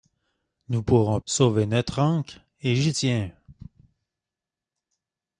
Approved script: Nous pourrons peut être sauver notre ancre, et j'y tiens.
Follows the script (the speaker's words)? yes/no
no